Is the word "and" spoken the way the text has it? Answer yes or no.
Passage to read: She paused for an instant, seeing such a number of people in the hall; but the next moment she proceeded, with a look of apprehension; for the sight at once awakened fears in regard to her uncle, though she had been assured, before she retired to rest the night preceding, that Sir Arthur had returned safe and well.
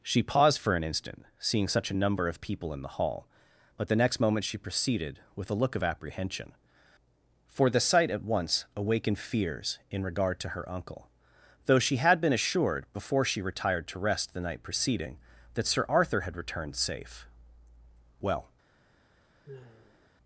no